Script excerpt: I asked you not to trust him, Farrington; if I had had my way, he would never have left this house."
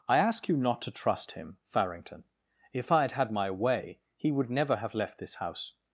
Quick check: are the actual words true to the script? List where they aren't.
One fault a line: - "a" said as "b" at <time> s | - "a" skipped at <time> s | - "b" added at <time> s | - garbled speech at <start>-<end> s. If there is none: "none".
- "asked" said as "ask" at 0.2 s